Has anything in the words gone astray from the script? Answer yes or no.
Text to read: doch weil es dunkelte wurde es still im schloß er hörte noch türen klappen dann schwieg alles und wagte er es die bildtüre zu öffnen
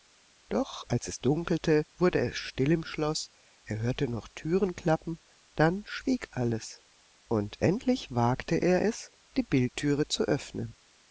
yes